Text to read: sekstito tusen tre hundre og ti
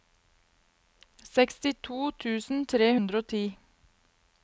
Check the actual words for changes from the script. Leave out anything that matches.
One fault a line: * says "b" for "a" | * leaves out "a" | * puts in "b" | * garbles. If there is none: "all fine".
all fine